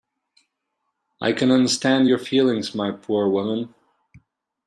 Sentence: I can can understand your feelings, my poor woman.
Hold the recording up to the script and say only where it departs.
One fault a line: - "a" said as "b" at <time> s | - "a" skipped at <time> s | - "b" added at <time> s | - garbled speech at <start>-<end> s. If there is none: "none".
- "can" skipped at 1.5 s